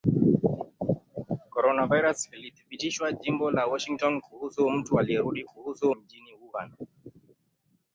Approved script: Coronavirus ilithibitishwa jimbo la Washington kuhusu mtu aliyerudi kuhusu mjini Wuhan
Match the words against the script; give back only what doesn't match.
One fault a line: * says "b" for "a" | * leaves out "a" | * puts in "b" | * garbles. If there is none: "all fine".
all fine